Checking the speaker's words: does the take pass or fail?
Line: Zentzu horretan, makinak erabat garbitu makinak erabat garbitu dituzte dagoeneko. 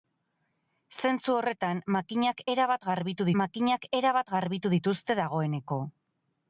pass